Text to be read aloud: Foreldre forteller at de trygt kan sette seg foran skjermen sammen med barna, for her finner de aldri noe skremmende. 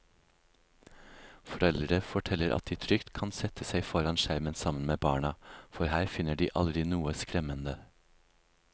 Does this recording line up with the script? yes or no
yes